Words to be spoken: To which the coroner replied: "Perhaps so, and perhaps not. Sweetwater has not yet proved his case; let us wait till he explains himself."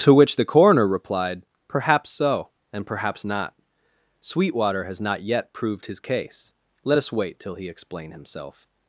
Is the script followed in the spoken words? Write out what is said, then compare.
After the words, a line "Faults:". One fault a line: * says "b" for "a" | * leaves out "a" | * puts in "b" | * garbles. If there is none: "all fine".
To which the coroner replied: "Perhaps so, and perhaps not. Sweetwater has not yet proved his case; let us wait till he explain himself."
Faults:
* says "explain" for "explains"